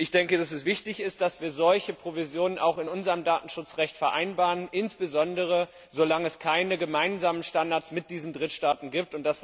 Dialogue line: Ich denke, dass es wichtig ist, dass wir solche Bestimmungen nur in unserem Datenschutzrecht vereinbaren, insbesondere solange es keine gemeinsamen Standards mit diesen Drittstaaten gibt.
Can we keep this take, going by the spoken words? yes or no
no